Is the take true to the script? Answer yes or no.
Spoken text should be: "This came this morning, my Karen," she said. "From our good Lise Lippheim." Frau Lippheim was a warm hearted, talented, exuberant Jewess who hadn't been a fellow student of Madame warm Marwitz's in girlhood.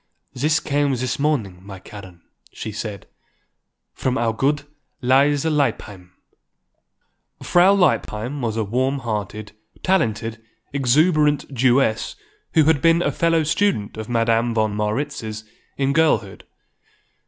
no